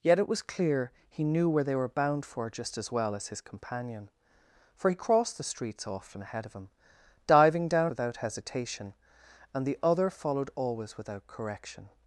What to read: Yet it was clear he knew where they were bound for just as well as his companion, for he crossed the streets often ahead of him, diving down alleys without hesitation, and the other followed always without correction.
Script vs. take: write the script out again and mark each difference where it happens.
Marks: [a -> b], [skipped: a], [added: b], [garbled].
Yet it was clear he knew where they were bound for just as well as his companion, for he crossed the streets often ahead of him, diving down [skipped: alleys] without hesitation, and the other followed always without correction.